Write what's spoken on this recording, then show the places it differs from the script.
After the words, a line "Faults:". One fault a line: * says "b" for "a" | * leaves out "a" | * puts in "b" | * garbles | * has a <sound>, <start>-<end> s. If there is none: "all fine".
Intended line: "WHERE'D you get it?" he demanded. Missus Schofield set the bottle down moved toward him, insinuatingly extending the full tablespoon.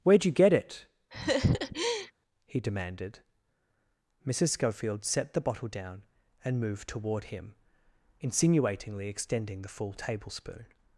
"WHERE'D you get it?" he demanded. Missus Schofield set the bottle down and moved toward him, insinuatingly extending the full tablespoon.
Faults:
* has a laugh, 1.1-2.1 s
* puts in "and"